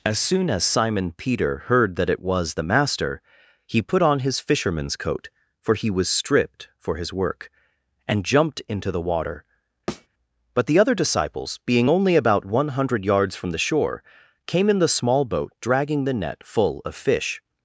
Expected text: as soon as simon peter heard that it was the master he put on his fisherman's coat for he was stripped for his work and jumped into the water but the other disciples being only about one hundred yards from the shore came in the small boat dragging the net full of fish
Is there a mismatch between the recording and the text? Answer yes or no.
no